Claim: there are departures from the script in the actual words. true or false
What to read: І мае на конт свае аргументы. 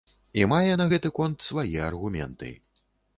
true